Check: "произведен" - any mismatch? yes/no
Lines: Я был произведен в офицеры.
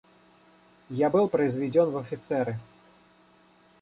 no